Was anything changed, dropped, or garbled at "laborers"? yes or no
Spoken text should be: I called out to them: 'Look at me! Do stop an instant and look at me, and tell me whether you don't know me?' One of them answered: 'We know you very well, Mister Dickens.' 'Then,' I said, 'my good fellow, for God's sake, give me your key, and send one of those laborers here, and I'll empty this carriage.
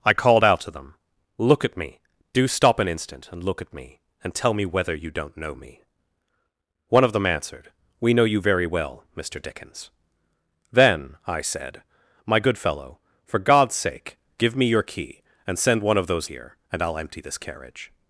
yes